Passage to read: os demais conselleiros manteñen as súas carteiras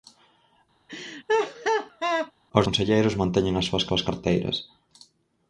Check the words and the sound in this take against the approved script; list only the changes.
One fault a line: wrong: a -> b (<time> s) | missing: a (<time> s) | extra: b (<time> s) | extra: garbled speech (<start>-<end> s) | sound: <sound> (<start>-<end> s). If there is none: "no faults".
sound: laugh (0.9-2.3 s)
missing: demais (2.7 s)
extra: súas (3.9 s)